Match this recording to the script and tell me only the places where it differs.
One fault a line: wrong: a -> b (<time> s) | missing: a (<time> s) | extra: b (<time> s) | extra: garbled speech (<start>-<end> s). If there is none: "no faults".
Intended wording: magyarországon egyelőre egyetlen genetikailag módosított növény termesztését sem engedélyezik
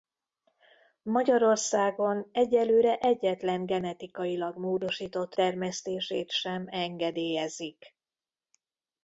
missing: növény (5.3 s)